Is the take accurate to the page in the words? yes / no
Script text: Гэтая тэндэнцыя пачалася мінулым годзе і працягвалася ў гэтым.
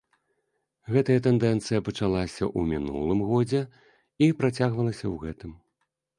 no